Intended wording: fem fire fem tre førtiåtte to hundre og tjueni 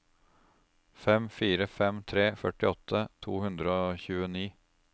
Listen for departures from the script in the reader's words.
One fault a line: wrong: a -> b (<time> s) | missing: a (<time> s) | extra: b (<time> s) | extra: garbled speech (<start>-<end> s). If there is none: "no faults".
no faults